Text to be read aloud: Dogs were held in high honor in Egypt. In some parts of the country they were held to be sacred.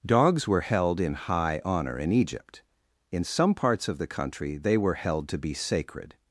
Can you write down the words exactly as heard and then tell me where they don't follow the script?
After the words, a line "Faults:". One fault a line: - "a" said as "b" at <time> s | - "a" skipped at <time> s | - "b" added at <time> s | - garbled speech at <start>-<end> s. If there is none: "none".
Dogs were held in high honor in Egypt. In some parts of the country they were held to be sacred.
Faults:
none